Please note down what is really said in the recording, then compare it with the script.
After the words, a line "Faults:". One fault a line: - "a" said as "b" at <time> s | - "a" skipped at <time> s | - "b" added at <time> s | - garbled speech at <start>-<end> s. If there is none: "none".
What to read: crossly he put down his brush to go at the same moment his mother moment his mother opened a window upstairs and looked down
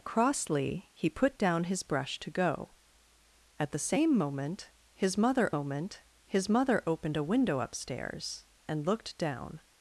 crossly he put down his brush to go at the same moment his mother moment his mother opened a window upstairs and looked down
Faults:
none